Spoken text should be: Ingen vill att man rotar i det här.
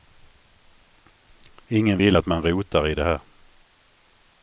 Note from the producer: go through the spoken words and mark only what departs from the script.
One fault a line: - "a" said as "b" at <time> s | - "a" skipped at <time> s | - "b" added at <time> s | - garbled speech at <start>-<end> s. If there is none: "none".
none